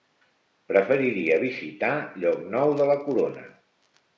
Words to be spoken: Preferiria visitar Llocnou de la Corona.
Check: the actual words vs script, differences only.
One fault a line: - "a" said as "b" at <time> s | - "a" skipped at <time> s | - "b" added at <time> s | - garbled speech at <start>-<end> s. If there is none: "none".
none